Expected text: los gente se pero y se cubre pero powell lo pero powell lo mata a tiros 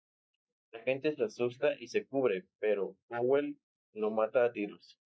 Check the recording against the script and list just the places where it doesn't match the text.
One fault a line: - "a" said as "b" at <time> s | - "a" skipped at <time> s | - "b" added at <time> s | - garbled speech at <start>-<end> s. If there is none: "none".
- "los" said as "la" at 0.7 s
- "pero" said as "asusta" at 1.2 s
- "pero powell lo" skipped at 4.1 s